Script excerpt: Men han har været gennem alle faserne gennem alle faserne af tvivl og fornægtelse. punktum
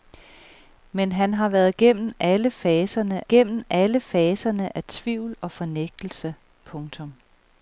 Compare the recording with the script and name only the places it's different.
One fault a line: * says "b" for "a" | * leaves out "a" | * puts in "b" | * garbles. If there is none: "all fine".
all fine